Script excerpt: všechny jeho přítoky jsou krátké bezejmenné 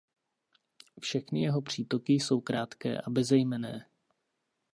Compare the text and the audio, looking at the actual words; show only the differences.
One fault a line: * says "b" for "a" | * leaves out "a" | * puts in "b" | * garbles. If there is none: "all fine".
* puts in "a"